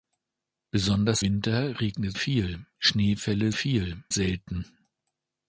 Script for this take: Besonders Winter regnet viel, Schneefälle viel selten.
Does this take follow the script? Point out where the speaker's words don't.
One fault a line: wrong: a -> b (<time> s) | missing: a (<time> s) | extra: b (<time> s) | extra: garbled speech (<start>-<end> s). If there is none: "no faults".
no faults